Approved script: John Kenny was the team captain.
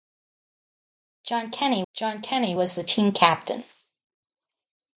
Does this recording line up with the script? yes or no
no